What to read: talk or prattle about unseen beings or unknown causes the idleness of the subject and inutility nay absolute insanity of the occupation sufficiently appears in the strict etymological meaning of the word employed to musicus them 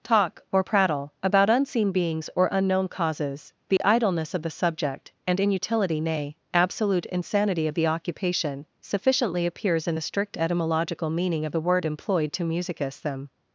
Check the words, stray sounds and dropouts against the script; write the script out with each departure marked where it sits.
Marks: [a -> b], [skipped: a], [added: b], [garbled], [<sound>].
talk or prattle about unseen beings or unknown causes the [dropout] idleness of the subject and inutility nay absolute insanity of the occupation sufficiently appears in the strict etymological meaning of the word employed to musicus them